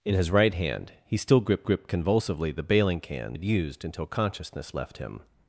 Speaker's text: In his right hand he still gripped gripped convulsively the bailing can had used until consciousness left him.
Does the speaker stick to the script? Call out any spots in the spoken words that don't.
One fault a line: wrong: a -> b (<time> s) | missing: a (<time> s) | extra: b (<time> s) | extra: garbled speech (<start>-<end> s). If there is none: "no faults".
no faults